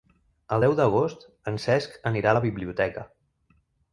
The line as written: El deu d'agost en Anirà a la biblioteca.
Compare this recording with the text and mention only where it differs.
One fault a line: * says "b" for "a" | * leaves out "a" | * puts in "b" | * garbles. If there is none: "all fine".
* puts in "Cesc"